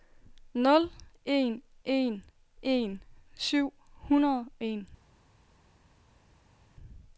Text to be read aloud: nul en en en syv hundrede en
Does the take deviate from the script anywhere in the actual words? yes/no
no